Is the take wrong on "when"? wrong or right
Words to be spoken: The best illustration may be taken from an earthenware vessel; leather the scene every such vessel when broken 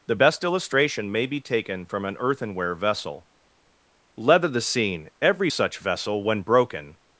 right